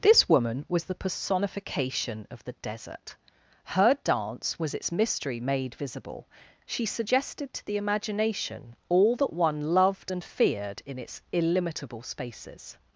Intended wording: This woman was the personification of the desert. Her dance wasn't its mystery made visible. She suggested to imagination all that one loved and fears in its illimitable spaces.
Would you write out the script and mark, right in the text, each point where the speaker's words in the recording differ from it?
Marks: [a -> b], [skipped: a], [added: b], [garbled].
This woman was the personification of the desert. Her dance [wasn't -> was] its mystery made visible. She suggested to [added: the] imagination all that one loved and [fears -> feared] in its illimitable spaces.